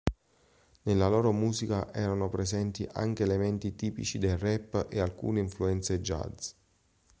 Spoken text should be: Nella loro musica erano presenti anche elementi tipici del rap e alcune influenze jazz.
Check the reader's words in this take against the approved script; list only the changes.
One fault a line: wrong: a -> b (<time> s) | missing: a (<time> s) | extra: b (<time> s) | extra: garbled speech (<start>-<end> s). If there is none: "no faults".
no faults